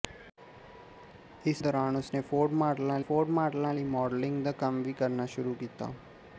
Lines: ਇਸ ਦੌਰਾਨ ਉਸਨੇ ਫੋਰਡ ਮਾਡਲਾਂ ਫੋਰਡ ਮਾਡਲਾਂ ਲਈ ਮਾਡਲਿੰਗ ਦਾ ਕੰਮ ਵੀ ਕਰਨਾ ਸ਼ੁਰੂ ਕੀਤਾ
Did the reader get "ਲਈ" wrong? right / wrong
right